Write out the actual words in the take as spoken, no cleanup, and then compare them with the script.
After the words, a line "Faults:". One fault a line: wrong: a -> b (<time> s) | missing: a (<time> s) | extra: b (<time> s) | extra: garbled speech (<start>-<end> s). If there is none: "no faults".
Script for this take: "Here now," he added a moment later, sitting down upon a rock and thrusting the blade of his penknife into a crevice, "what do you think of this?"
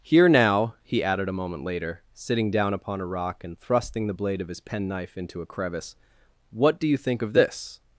"Here now," he added a moment later, sitting down upon a rock and thrusting the blade of his penknife into a crevice, "what do you think of this?"
Faults:
no faults